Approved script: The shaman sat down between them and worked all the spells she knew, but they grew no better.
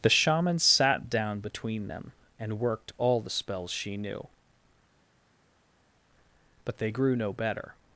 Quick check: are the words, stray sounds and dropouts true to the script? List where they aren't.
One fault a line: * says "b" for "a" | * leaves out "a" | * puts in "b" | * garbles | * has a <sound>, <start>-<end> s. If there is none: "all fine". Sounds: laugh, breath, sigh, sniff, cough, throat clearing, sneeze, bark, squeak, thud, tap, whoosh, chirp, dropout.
all fine